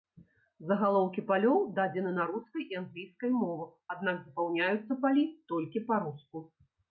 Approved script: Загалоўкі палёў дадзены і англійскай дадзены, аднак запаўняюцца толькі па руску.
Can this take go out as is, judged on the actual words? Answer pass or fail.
fail